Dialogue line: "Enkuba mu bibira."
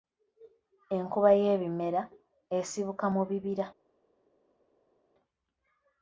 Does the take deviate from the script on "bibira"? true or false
false